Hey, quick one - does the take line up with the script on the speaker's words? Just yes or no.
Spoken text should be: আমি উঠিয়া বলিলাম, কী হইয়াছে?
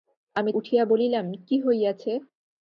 yes